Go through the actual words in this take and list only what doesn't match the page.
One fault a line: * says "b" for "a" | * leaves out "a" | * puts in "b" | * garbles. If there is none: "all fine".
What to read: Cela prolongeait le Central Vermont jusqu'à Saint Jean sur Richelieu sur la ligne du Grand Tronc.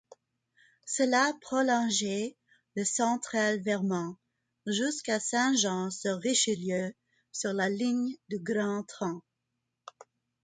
all fine